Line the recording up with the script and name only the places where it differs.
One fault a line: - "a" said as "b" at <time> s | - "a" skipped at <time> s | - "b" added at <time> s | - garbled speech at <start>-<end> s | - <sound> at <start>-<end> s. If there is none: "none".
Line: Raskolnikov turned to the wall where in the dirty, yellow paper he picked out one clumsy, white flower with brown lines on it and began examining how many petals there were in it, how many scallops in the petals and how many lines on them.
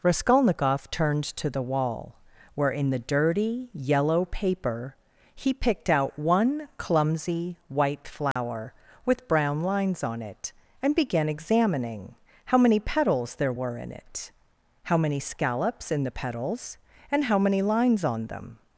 - dropout at 8.3-8.4 s